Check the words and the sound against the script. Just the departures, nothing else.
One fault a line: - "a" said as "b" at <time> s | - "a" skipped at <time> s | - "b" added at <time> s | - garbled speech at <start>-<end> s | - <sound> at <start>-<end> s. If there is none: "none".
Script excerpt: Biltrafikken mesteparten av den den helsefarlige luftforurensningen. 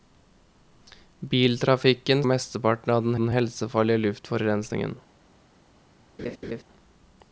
- laugh at 6.2-6.6 s